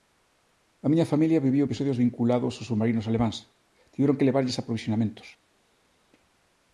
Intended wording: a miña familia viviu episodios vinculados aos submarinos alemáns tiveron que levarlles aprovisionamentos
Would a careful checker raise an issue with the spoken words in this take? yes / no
no